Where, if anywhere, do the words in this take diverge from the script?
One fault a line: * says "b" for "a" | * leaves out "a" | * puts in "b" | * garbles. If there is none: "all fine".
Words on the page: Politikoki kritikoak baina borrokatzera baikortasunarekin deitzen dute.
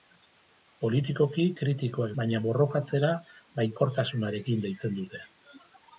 all fine